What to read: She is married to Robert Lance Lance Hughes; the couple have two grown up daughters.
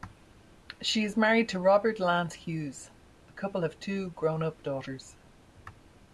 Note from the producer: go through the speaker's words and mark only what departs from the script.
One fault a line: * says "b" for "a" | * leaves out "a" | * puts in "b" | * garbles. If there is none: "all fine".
* leaves out "Lance"